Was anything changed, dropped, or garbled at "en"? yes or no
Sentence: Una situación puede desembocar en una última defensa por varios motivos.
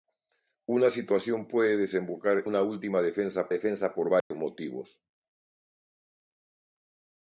yes